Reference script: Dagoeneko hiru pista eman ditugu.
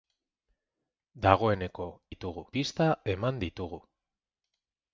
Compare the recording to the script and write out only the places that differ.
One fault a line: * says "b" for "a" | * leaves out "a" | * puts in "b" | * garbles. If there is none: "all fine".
* says "ditugu" for "hiru"